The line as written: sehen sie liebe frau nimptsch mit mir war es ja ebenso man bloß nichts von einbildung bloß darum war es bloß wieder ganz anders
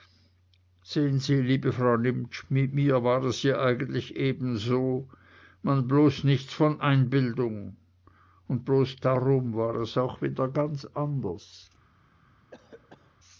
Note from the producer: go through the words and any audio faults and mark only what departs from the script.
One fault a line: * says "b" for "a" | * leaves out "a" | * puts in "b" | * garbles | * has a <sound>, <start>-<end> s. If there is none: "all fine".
* puts in "eigentlich"
* puts in "und"
* says "auch" for "bloß"
* has a cough, 12.5-13.2 s